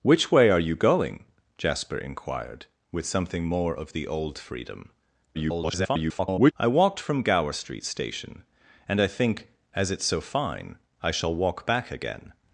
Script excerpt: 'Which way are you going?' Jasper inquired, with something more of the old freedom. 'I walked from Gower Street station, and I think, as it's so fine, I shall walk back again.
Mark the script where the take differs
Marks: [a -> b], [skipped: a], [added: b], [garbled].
'Which way are you going?' Jasper inquired, with something more of the old freedom. [garbled] 'I walked from Gower Street station, and I think, as it's so fine, I shall walk back again.